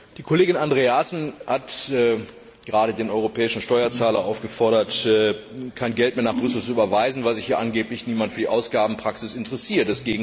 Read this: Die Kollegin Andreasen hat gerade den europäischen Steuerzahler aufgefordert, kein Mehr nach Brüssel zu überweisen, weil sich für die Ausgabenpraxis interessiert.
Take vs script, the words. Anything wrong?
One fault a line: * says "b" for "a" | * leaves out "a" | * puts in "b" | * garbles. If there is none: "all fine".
* puts in "Geld"
* puts in "hier angeblich niemand"